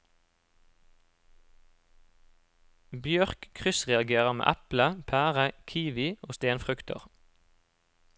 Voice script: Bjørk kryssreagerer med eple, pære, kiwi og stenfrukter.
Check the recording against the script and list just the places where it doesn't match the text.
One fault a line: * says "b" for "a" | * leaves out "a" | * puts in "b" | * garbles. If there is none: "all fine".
all fine